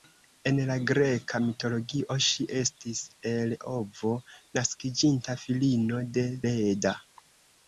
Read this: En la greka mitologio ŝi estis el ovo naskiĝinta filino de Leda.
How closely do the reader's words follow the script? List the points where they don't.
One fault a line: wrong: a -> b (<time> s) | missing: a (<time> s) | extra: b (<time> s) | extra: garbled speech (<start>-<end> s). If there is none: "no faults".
no faults